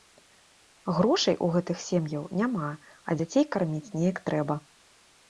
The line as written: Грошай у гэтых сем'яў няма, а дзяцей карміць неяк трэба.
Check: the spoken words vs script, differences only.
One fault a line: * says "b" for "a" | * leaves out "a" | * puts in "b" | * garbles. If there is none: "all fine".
all fine